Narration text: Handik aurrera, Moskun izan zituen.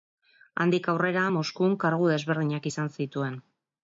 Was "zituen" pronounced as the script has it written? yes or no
yes